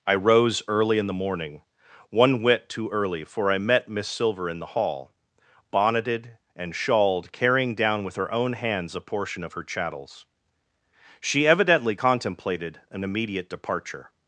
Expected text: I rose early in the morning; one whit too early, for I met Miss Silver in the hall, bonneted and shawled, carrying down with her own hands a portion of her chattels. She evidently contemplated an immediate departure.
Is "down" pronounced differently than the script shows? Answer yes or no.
no